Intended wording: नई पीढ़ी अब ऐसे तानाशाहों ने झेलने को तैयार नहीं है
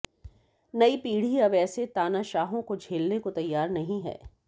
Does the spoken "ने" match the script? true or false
false